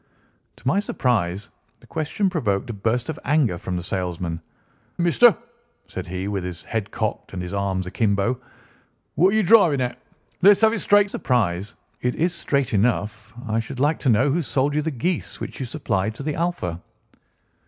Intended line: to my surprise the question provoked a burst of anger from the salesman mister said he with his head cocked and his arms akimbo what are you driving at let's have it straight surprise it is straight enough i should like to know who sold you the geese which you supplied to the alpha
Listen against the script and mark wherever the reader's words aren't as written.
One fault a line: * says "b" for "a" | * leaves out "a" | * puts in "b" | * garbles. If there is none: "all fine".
all fine